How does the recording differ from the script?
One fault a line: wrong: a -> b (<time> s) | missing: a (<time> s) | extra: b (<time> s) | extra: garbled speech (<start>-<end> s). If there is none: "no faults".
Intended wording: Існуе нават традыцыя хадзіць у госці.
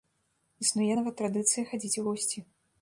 no faults